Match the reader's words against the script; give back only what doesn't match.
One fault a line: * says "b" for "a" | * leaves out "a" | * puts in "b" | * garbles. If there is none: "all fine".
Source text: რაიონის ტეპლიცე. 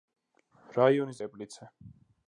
all fine